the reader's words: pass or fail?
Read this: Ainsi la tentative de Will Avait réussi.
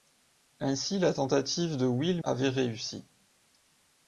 pass